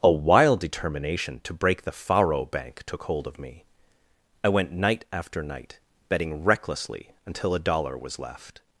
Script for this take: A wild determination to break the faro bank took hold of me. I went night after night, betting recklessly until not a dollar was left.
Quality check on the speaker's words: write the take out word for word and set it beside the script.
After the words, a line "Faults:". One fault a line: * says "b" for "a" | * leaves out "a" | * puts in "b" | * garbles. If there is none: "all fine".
A wild determination to break the faro bank took hold of me. I went night after night, betting recklessly until a dollar was left.
Faults:
* leaves out "not"